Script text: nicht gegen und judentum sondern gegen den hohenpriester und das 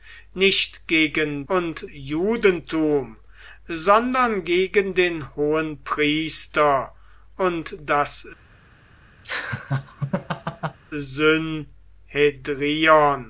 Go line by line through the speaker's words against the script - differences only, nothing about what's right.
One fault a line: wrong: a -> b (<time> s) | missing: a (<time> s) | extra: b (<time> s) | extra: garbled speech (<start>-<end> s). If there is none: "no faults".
no faults